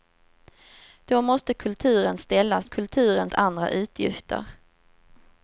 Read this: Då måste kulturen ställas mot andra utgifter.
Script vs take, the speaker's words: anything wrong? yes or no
yes